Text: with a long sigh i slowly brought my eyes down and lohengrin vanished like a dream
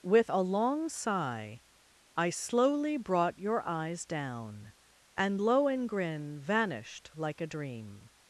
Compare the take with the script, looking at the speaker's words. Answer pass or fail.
fail